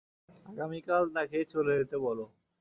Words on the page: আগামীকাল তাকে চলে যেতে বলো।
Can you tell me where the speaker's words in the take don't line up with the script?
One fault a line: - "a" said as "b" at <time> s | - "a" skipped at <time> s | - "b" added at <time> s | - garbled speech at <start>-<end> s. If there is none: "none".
none